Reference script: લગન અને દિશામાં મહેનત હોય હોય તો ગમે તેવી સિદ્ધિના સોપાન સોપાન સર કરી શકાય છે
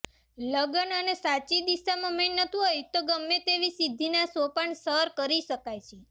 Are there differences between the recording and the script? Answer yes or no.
yes